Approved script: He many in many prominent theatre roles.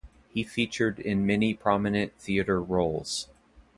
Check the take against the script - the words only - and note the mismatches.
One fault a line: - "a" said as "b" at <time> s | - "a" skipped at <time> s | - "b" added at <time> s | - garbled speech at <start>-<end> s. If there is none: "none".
- "many" said as "featured" at 0.4 s